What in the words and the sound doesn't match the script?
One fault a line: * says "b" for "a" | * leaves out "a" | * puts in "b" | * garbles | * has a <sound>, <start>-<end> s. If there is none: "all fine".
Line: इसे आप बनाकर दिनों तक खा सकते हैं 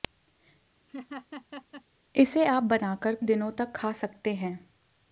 * has a laugh, 0.9-1.8 s